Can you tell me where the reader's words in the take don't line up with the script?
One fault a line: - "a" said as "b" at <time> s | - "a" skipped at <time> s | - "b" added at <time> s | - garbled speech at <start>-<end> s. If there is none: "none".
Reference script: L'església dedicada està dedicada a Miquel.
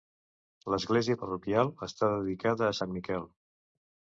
- "dedicada" said as "parroquial" at 1.2 s
- "sant" added at 2.8 s